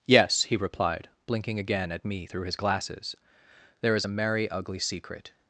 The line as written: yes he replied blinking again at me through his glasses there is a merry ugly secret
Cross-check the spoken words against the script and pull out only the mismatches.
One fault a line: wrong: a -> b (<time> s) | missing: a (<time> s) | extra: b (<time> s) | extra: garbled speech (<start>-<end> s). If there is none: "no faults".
no faults